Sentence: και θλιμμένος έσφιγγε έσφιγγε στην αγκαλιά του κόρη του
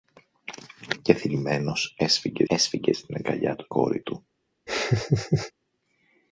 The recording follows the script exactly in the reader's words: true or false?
true